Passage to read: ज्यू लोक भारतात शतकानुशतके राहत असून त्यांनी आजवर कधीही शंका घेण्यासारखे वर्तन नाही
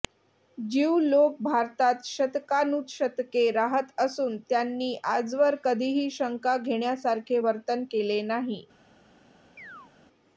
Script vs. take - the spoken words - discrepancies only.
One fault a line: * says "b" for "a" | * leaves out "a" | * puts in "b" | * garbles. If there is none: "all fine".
* puts in "केले"